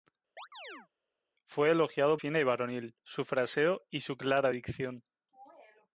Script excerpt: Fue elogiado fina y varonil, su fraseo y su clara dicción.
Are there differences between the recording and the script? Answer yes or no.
no